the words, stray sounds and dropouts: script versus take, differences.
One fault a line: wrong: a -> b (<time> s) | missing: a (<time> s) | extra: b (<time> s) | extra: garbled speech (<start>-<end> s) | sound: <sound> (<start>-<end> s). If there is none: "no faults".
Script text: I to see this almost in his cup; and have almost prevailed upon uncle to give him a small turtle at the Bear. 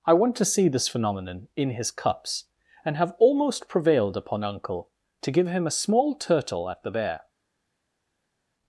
extra: want (0.1 s)
wrong: almost -> phenomenon (0.9 s)
wrong: cup -> cups (1.9 s)